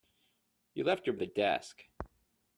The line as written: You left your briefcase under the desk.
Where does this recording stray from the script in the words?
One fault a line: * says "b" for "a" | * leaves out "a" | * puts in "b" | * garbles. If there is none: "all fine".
* leaves out "briefcase under"